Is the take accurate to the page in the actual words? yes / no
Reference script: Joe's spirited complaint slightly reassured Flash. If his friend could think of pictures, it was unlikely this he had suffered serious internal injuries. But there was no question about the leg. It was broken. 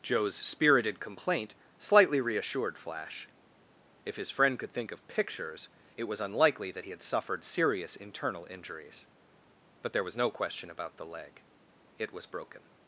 no